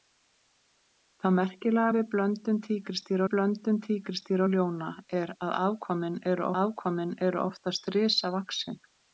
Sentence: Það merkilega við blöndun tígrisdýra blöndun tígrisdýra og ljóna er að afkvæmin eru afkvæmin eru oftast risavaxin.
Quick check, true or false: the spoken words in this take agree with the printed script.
true